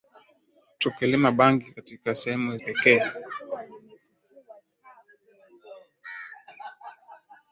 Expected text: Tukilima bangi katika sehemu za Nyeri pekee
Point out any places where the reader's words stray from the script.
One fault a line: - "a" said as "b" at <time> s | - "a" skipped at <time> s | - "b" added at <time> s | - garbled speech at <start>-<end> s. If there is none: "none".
- "za Nyeri" skipped at 2.6 s